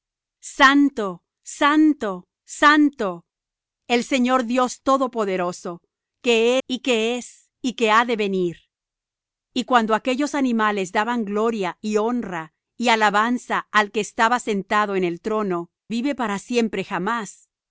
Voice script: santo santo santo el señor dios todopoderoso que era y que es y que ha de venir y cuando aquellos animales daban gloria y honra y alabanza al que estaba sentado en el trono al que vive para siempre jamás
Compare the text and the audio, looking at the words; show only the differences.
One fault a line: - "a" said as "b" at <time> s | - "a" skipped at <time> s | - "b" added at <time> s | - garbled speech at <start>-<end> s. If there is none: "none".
- "era" skipped at 6.6 s
- "al que" skipped at 15.7 s